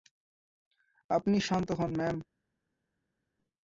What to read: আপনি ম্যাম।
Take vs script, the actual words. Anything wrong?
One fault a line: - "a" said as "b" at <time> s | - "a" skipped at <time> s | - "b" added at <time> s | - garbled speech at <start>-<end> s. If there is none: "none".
- "শান্ত হোন" added at 1.4 s